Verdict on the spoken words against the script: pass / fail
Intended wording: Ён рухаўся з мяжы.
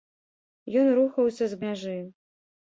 pass